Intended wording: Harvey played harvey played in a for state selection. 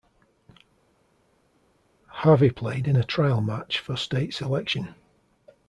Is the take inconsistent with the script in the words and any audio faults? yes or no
yes